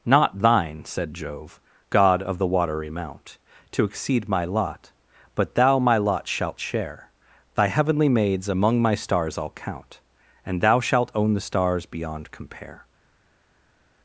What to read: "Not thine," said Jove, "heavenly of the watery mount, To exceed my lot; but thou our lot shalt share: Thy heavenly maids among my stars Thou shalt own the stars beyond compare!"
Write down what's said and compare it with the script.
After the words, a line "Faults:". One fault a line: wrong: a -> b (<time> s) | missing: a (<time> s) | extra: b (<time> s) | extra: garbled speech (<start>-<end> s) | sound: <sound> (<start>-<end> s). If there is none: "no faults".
"Not thine," said Jove, "god of the watery mount, To exceed my lot; but thou my lot shalt share: Thy heavenly maids among my stars I'll count, And thou shalt own the stars beyond compare!"
Faults:
wrong: heavenly -> god (1.9 s)
wrong: our -> my (5.8 s)
extra: I'll count And (9.4 s)